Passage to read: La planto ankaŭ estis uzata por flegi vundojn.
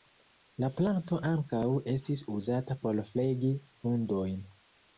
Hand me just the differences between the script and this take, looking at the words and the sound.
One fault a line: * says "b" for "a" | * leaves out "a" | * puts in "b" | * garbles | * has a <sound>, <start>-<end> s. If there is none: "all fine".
all fine